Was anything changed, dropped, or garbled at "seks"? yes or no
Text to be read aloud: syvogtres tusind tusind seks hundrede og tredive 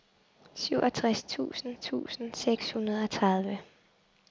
no